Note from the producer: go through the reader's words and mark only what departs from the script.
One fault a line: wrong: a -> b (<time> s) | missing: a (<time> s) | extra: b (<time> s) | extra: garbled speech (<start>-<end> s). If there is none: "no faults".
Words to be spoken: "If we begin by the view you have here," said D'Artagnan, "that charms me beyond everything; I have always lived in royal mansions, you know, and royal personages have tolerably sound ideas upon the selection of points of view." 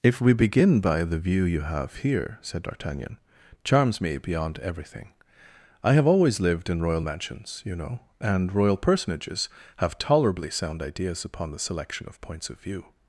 missing: that (3.2 s)